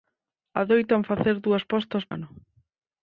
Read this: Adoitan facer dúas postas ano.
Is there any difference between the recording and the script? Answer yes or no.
no